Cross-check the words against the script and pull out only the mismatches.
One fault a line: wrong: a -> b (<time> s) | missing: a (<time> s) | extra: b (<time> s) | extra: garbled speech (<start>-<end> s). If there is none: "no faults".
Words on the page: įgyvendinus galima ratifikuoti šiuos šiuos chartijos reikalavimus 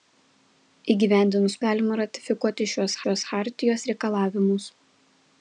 no faults